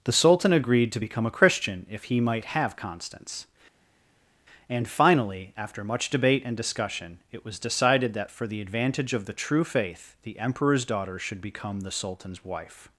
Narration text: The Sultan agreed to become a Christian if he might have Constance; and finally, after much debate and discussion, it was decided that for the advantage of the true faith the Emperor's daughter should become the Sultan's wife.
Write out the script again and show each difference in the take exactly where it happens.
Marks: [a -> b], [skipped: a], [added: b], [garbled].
The Sultan agreed to become a Christian if he might have Constance; and finally, after much debate and discussion, it was decided that for the advantage of the true faith the Emperor's daughter should become the Sultan's wife.